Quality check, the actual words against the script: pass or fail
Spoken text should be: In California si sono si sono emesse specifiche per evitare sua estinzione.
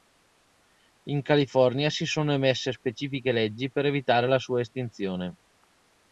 fail